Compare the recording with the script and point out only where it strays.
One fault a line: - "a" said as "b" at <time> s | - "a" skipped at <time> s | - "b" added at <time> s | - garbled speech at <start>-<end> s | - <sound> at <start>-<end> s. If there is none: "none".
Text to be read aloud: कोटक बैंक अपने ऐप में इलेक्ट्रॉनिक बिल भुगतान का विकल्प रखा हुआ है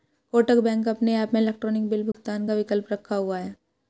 - dropout at 2.1-2.1 s